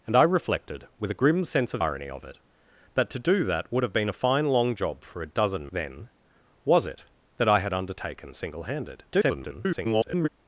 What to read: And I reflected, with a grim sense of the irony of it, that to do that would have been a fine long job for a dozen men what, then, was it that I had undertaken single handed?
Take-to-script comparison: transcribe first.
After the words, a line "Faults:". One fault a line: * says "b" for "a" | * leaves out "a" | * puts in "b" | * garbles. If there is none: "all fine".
And I reflected, with a grim sense of irony of it, that to do that would have been a fine long job for a dozen then, was it that I had undertaken single handed? [garbled]
Faults:
* leaves out "the"
* leaves out "men what"
* garbles